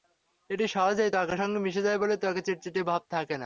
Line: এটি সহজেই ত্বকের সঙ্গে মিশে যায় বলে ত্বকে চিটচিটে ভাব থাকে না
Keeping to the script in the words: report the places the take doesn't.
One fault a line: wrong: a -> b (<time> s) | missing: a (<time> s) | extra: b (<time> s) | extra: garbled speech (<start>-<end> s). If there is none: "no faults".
no faults